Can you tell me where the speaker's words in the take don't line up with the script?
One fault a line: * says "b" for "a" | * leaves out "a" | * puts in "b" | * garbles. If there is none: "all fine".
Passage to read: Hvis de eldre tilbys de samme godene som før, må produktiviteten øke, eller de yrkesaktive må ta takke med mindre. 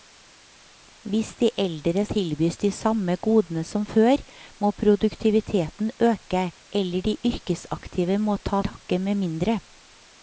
all fine